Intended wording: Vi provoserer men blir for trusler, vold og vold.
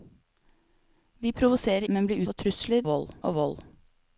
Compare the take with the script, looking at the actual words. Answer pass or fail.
pass